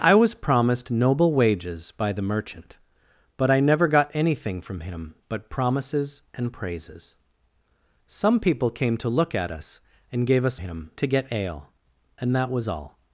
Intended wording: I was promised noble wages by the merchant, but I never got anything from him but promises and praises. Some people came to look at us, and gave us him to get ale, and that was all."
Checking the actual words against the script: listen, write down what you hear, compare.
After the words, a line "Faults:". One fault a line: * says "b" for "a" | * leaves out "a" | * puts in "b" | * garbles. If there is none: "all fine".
I was promised noble wages by the merchant, but I never got anything from him but promises and praises. Some people came to look at us, and gave us him to get ale, and that was all."
Faults:
all fine